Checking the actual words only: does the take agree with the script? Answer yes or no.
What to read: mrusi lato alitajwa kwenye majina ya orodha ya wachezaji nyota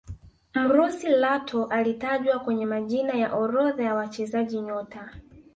yes